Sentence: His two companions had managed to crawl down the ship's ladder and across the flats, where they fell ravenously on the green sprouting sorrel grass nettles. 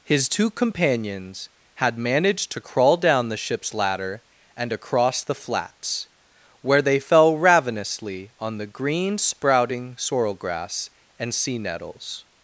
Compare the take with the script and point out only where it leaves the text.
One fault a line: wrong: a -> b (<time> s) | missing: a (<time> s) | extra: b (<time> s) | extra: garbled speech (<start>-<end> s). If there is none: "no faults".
extra: and sea (11.2 s)